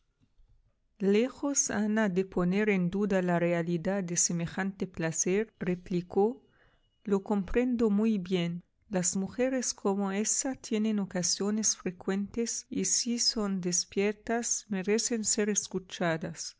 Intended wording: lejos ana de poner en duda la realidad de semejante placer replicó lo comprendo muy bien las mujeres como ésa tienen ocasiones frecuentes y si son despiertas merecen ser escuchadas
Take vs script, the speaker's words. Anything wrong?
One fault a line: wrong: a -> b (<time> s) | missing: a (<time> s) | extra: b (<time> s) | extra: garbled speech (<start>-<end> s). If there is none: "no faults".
no faults